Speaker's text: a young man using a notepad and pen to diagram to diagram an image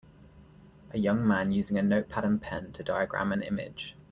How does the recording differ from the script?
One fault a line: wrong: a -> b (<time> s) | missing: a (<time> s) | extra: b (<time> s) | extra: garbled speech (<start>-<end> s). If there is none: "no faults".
missing: to diagram (3.3 s)